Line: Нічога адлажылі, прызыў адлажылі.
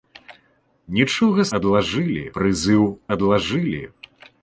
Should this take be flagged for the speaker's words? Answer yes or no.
no